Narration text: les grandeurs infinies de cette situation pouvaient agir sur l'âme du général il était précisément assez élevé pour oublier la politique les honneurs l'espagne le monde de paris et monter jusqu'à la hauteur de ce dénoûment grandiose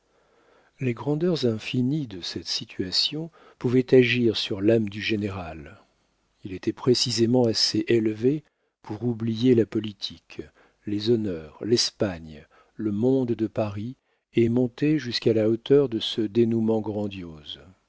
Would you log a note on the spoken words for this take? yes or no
no